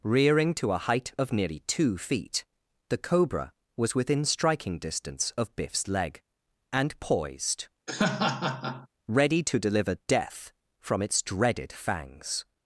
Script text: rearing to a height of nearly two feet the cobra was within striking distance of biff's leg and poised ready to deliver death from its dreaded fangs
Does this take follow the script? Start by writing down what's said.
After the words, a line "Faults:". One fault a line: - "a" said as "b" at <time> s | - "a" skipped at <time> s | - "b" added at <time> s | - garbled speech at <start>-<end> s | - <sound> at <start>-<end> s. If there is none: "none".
rearing to a height of nearly two feet the cobra was within striking distance of biff's leg and poised ready to deliver death from its dreaded fangs
Faults:
- laugh at 7.9-8.9 s